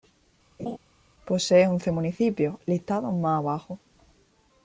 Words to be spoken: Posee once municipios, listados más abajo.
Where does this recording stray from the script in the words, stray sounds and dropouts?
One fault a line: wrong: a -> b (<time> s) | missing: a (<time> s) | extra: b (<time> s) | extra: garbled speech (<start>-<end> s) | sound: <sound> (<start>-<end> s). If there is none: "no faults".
sound: laugh (0.6-0.8 s)